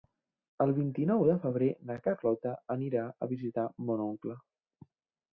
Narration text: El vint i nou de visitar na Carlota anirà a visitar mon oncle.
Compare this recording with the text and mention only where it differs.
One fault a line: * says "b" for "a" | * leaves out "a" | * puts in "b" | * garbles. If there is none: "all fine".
* says "febrer" for "visitar"